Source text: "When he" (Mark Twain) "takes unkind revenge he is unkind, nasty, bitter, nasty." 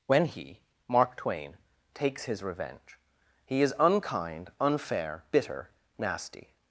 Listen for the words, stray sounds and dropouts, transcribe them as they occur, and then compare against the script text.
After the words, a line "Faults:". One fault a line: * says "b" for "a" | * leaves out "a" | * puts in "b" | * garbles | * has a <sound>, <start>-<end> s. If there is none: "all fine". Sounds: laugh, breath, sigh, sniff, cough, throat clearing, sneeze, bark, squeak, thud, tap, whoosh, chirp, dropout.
"When he" (Mark Twain) "takes his revenge he is unkind, unfair, bitter, nasty."
Faults:
* says "his" for "unkind"
* says "unfair" for "nasty"